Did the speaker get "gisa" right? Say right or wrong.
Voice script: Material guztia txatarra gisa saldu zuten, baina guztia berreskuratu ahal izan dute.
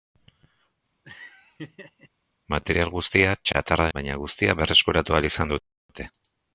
wrong